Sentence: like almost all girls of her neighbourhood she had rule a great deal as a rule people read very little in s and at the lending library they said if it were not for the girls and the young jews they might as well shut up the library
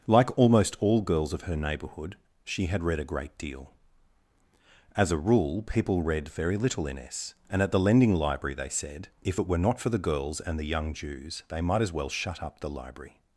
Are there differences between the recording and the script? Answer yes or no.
yes